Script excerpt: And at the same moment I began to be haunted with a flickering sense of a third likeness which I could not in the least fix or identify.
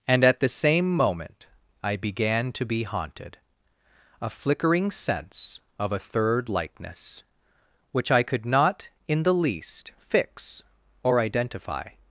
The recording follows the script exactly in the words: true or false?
false